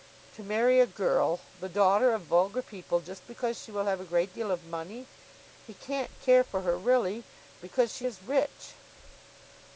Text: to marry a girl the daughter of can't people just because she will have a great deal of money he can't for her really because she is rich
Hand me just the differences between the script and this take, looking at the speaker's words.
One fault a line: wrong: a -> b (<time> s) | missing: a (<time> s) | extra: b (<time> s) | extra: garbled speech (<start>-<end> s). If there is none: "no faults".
wrong: can't -> vulgar (2.2 s)
extra: care (6.2 s)